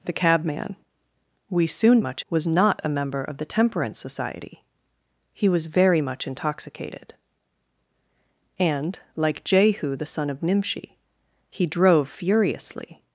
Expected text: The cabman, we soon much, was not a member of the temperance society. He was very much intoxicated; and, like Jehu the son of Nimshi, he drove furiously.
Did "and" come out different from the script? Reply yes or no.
no